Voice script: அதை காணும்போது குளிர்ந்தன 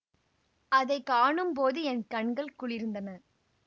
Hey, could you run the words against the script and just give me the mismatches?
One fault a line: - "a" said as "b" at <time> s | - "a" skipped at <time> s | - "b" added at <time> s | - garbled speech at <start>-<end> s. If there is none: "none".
- "என் கண்கள்" added at 1.8 s